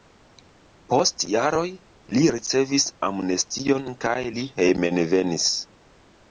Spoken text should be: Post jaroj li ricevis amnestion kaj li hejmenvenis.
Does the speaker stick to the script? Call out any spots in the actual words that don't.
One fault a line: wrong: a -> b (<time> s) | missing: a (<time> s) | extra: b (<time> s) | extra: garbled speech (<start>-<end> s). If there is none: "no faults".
no faults